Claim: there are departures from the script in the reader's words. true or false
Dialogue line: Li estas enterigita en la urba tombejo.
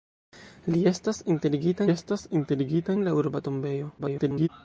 true